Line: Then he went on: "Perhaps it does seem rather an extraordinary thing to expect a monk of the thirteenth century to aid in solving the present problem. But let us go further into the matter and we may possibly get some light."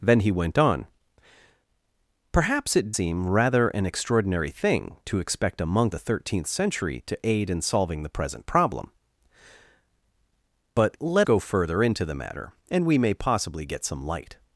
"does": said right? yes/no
no